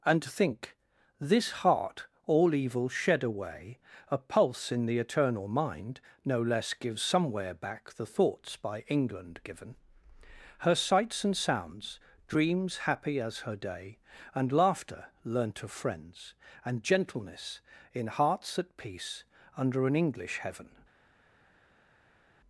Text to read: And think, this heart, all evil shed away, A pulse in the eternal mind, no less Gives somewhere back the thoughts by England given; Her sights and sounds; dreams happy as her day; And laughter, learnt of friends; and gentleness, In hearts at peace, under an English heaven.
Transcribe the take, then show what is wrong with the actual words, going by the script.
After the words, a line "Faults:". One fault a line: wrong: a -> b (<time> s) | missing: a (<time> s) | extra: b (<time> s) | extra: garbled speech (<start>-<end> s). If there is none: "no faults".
And think, this heart, all evil shed away, A pulse in the eternal mind, no less Gives somewhere back the thoughts by England given; Her sights and sounds; dreams happy as her day; And laughter, learnt of friends; and gentleness, In hearts at peace, under an English heaven.
Faults:
no faults